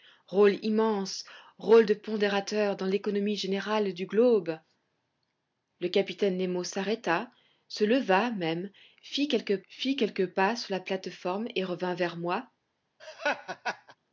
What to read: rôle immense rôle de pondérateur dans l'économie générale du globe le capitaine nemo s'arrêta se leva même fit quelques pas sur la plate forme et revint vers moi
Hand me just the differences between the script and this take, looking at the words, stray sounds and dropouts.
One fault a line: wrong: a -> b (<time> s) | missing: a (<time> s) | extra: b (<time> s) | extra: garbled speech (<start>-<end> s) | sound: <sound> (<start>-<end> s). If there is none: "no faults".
extra: fit quelques (9.7 s)
sound: laugh (13.0-14.0 s)